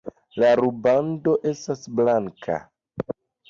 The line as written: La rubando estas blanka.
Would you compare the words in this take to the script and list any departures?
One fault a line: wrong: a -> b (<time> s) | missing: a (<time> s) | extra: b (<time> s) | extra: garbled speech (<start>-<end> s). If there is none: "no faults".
no faults